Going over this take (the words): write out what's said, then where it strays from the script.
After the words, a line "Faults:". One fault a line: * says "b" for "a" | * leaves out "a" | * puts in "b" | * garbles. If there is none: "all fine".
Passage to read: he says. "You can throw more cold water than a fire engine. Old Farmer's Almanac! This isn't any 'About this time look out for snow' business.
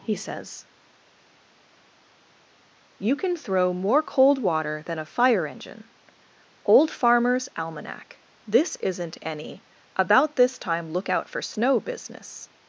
he says. "You can throw more cold water than a fire engine. Old Farmer's Almanac! This isn't any 'About this time look out for snow' business.
Faults:
all fine